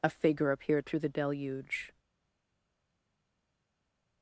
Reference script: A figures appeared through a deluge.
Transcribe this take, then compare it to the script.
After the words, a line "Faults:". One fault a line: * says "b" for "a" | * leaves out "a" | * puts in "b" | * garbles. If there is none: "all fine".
A figure appeared through the deluge.
Faults:
* says "figure" for "figures"
* says "the" for "a"